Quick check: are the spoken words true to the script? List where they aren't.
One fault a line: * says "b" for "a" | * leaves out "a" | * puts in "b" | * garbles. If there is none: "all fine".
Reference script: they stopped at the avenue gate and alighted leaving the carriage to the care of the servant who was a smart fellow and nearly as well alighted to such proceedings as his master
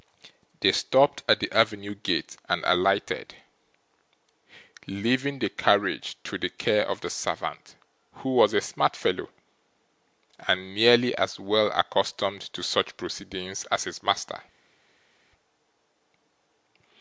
* says "accustomed" for "alighted"